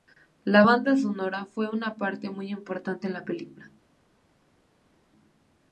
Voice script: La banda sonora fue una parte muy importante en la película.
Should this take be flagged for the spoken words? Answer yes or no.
no